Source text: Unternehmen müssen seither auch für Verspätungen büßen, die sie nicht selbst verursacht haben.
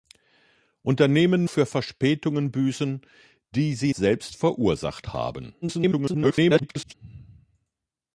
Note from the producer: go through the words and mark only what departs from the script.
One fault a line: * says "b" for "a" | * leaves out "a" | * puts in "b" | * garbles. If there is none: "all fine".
* leaves out "müssen seither auch"
* leaves out "nicht"
* garbles